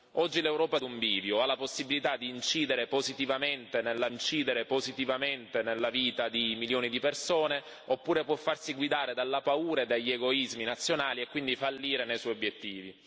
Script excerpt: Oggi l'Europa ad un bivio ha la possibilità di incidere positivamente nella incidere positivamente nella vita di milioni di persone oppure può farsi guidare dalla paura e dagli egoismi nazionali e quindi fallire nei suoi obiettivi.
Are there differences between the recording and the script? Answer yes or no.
no